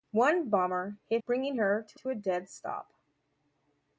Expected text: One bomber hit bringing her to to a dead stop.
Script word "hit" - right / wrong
right